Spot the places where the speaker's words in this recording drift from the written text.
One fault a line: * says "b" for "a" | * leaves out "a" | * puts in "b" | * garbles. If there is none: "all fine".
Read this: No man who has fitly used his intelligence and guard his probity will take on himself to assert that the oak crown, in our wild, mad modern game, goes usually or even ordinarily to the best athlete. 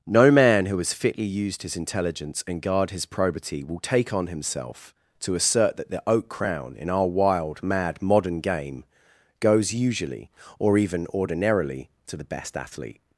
all fine